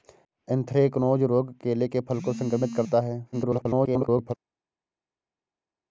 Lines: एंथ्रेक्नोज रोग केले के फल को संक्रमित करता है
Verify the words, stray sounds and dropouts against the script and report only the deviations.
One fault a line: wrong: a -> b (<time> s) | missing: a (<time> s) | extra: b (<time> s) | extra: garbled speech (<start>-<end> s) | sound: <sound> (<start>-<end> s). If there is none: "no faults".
extra: garbled speech (3.3-4.3 s)